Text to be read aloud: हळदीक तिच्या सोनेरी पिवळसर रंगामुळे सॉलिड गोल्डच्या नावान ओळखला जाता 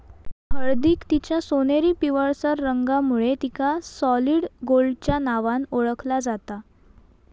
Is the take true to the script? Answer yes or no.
no